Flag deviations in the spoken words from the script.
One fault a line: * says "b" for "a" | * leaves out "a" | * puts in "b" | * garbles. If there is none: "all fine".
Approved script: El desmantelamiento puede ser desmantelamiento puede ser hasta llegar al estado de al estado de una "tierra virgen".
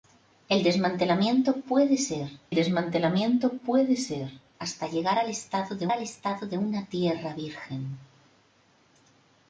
all fine